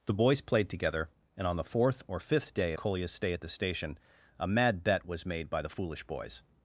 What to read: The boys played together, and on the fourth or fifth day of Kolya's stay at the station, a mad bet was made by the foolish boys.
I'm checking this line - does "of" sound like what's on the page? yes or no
no